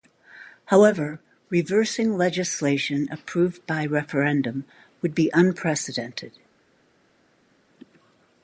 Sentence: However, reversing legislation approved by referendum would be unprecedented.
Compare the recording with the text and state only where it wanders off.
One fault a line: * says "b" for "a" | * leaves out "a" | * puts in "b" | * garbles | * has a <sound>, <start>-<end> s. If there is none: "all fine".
all fine